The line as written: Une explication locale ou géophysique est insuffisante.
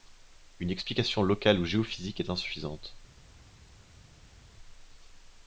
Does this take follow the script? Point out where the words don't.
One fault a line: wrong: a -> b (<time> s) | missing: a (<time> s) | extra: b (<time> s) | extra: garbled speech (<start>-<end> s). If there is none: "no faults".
no faults